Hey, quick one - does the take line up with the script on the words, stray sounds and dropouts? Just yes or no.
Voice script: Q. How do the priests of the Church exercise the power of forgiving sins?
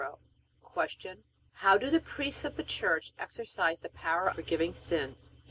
no